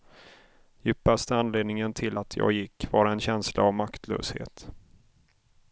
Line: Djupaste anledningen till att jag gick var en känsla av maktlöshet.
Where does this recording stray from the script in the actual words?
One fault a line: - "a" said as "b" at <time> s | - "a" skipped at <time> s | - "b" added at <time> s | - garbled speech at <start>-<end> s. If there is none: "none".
none